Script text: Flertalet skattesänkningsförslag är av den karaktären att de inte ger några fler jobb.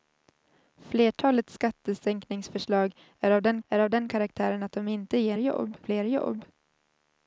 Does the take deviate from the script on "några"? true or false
true